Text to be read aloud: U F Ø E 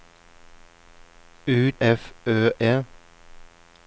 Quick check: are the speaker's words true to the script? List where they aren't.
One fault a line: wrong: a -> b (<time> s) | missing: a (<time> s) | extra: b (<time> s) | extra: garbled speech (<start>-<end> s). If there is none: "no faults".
no faults